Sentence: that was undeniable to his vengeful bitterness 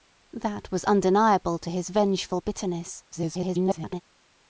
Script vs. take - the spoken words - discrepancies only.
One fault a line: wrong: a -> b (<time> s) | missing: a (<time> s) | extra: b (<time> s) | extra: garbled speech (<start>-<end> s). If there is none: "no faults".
extra: garbled speech (3.1-4.0 s)